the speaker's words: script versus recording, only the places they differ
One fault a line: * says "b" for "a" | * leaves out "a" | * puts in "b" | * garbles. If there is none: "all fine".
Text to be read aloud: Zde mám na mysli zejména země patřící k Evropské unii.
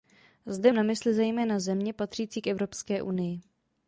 * leaves out "mám"